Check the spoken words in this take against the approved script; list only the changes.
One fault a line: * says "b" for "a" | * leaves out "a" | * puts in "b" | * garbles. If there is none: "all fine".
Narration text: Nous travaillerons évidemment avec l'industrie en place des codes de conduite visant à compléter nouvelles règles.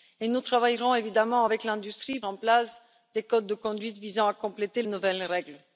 all fine